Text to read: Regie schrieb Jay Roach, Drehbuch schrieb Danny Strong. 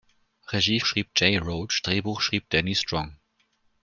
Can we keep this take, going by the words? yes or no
yes